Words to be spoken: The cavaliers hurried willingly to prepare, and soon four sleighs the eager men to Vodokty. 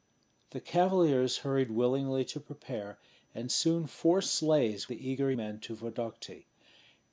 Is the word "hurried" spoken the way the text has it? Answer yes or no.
yes